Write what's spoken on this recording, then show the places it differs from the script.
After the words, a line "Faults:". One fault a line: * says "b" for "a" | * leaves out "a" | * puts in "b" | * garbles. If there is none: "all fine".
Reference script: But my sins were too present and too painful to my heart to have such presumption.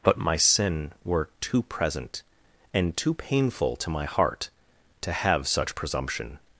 But my sin were too present and too painful to my heart to have such presumption.
Faults:
* says "sin" for "sins"